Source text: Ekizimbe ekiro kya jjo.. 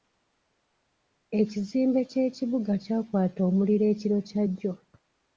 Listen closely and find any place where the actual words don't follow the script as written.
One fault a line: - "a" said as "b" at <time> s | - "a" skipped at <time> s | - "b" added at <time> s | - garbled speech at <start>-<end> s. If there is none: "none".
- "ky'ekibuga kyakwata omuliro" added at 2.1 s